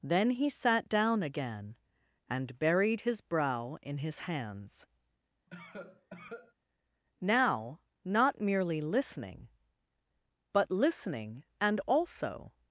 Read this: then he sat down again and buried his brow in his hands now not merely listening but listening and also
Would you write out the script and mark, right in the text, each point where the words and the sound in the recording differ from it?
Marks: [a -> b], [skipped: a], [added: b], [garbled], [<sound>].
then he sat down again and buried his brow in his hands [cough] now not merely listening but listening and also